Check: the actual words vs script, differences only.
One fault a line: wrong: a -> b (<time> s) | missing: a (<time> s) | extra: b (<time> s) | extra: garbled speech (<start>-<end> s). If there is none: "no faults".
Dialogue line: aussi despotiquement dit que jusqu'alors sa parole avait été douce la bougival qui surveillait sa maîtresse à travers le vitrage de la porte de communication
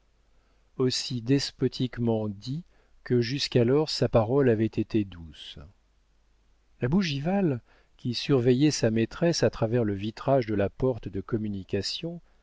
no faults